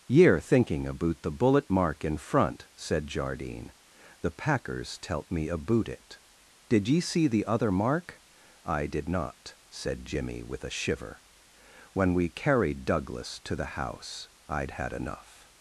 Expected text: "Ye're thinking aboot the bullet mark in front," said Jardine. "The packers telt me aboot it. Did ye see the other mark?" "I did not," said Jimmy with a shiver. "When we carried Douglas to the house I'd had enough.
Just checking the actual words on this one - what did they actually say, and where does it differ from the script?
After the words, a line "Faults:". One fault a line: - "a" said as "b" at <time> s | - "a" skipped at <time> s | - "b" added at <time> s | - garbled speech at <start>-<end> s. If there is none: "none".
"Ye're thinking aboot the bullet mark in front," said Jardine. "The packers telt me aboot it. Did ye see the other mark?" "I did not," said Jimmy with a shiver. "When we carried Douglas to the house I'd had enough.
Faults:
none